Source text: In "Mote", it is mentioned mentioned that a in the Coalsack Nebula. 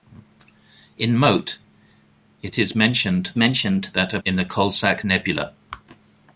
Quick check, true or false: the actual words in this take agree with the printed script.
true